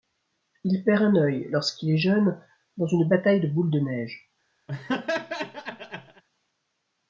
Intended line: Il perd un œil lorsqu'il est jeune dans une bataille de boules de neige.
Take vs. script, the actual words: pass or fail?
pass